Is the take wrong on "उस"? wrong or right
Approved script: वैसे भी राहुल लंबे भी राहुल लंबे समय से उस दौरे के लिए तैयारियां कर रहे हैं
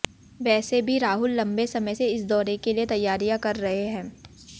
wrong